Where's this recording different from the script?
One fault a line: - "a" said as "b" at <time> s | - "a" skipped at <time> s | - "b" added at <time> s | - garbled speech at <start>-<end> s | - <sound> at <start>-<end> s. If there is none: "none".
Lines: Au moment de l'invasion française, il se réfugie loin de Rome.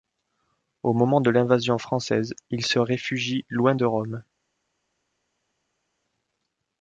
none